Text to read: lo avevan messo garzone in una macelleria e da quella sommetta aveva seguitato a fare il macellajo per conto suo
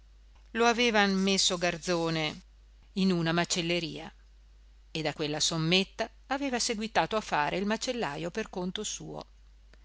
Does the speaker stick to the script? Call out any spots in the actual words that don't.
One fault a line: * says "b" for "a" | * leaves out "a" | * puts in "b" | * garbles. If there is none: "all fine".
all fine